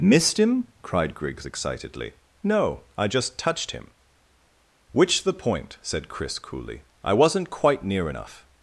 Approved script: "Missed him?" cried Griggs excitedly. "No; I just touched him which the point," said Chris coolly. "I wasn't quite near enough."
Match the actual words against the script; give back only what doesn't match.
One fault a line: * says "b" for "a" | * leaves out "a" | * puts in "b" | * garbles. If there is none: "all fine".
all fine